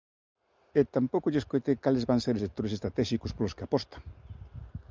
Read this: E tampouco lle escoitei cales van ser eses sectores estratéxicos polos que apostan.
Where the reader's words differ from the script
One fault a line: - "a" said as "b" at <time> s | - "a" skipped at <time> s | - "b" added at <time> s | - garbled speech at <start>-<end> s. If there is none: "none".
- "eses" skipped at 2.4 s